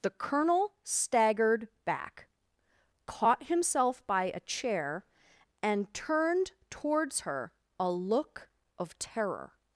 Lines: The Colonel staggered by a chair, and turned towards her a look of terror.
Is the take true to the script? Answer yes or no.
no